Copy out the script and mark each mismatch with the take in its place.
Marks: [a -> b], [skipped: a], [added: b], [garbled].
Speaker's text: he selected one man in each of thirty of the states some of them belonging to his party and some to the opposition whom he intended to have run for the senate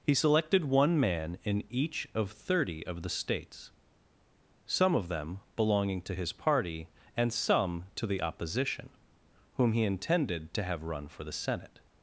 he selected one man in each of thirty of the states some of them belonging to his party and some to the opposition whom he intended to have run for the senate